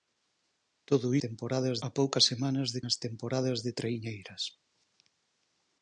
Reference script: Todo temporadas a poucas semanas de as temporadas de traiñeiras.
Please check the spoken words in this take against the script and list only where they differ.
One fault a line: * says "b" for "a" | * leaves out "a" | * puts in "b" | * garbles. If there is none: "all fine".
all fine